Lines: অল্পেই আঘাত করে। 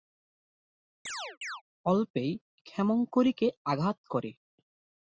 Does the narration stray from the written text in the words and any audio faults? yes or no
yes